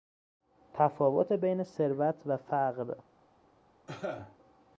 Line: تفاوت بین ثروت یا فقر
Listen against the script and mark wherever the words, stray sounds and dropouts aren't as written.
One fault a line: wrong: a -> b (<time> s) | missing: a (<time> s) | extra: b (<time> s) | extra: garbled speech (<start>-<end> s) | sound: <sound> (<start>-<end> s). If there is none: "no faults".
wrong: یا -> و (2.3 s)
sound: cough (3.9-4.4 s)